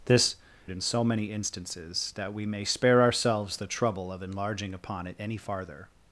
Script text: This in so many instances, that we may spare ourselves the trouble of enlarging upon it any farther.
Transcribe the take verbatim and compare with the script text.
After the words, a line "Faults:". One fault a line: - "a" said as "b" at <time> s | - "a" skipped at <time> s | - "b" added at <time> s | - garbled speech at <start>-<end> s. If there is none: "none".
This in so many instances, that we may spare ourselves the trouble of enlarging upon it any farther.
Faults:
none